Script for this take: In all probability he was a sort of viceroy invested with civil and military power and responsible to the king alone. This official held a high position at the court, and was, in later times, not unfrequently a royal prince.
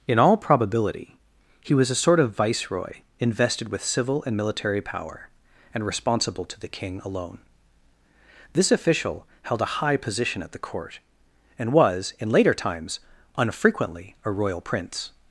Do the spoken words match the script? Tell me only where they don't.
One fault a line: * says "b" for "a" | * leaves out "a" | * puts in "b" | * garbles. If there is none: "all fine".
* leaves out "not"